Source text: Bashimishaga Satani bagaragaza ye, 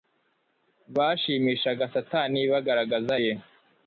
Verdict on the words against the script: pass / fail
pass